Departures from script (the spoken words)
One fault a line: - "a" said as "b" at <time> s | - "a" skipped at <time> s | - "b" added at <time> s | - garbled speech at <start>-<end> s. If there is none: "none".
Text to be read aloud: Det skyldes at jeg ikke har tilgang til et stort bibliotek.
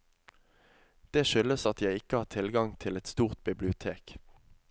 none